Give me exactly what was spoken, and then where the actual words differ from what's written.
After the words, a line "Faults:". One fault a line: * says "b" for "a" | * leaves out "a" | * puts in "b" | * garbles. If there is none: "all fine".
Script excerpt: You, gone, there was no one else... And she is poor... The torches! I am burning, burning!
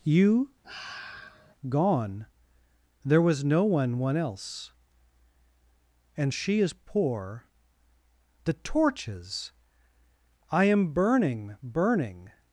You, gone, there was no one one else... And she is poor... The torches! I am burning, burning!
Faults:
* puts in "one"